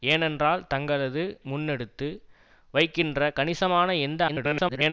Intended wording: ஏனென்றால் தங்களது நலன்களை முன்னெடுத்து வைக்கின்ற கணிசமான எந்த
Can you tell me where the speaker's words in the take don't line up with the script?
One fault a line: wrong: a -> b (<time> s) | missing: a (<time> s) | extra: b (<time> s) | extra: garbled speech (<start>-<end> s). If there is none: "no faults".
missing: நலன்களை (1.2 s)
extra: garbled speech (4.3-4.9 s)